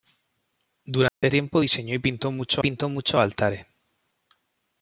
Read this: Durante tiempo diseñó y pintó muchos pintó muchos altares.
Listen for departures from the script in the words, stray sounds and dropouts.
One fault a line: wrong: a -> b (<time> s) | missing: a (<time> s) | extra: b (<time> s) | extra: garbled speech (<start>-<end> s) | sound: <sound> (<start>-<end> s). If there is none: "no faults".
sound: dropout (1.1-1.2 s)